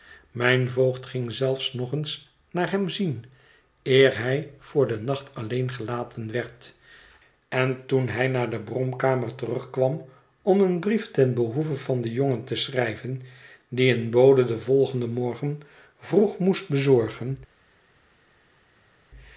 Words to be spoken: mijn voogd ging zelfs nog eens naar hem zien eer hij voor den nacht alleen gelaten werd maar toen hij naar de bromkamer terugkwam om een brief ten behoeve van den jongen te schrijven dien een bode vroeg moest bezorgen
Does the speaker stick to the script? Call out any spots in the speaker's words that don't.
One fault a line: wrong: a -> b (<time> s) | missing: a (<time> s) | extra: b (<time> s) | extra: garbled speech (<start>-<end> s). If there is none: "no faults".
wrong: maar -> en (7.5 s)
extra: den volgenden morgen (14.4 s)